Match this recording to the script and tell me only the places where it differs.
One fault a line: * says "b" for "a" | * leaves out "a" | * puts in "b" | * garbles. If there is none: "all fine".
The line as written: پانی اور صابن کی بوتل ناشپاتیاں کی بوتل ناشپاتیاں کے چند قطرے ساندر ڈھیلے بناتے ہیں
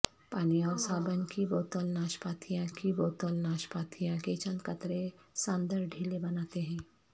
all fine